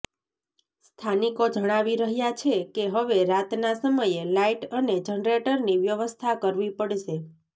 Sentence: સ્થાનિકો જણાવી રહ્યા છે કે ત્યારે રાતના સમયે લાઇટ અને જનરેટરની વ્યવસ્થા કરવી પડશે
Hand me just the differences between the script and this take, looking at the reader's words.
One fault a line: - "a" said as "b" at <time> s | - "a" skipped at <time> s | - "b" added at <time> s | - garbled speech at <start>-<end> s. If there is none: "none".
- "ત્યારે" said as "હવે" at 3.0 s